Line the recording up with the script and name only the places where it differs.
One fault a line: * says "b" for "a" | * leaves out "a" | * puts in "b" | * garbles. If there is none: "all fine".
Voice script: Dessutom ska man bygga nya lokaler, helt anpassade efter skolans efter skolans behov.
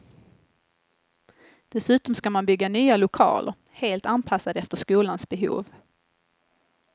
* leaves out "efter skolans"